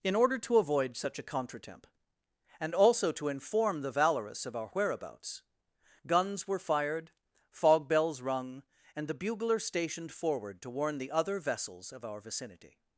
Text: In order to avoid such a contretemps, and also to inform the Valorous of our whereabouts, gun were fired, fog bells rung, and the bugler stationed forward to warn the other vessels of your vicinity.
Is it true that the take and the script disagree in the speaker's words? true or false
true